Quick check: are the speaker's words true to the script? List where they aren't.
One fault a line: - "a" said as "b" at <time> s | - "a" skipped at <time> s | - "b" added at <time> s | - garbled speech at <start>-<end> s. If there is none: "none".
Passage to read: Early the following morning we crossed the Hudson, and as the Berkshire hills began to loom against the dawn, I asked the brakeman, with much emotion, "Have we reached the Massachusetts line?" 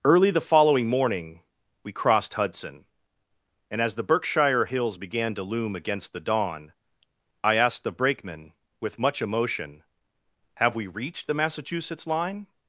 - "the" skipped at 2.3 s